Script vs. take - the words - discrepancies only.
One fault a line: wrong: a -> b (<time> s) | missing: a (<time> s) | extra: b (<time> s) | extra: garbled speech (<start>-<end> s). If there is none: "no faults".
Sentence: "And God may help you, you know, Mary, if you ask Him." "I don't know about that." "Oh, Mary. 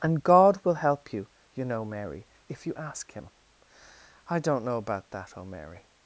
wrong: may -> will (0.6 s)